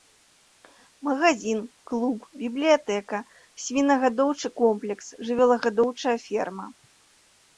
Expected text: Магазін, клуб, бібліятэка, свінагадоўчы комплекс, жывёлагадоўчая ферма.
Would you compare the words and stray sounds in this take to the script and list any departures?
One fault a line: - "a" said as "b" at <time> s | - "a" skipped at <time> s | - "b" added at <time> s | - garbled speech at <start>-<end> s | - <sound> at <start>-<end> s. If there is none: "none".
none